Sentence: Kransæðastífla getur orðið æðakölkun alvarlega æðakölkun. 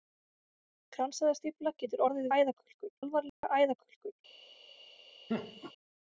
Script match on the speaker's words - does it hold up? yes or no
yes